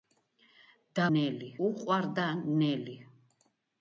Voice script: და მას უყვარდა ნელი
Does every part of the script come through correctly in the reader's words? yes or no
no